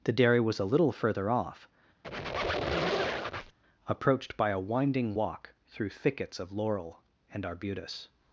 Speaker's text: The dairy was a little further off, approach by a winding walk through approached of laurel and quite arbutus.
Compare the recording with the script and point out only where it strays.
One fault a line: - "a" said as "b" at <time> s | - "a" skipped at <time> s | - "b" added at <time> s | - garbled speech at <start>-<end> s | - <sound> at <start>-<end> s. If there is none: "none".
- squeak at 2.0-3.6 s
- "approach" said as "approached" at 3.9 s
- "approached" said as "thickets" at 5.9 s
- "quite" skipped at 7.4 s